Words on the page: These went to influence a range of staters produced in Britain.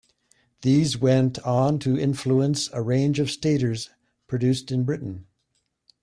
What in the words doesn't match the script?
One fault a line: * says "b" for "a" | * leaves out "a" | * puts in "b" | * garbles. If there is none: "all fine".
* puts in "on"